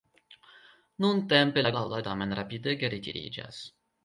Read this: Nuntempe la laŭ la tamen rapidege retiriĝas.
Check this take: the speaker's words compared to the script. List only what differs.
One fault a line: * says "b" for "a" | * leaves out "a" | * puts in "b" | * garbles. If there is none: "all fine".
all fine